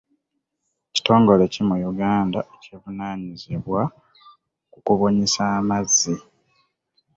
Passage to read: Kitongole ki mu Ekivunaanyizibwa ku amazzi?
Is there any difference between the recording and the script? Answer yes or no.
yes